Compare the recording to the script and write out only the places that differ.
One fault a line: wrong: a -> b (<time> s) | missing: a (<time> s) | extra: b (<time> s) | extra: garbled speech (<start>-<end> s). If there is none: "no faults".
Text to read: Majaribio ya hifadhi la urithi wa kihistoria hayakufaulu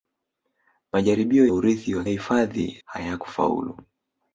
missing: ya hifadhi la (1.5 s)
wrong: kihistoria -> hifadhi (2.1 s)